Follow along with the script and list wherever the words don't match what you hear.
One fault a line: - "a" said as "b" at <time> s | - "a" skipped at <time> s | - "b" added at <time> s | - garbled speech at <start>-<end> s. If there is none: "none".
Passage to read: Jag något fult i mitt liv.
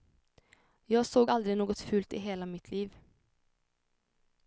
- "såg aldrig" added at 1.1 s
- "hela" added at 2.2 s